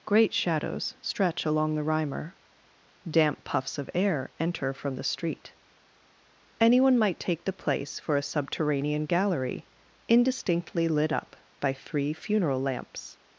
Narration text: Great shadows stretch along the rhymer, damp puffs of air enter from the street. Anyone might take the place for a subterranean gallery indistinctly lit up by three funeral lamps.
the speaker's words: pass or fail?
pass